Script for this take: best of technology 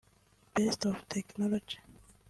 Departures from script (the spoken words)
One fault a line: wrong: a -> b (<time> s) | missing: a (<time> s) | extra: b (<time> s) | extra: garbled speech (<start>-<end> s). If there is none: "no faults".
no faults